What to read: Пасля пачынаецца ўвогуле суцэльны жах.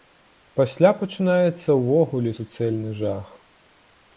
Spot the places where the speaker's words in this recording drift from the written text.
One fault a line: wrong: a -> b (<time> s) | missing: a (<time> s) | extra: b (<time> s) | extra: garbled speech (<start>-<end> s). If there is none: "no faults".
no faults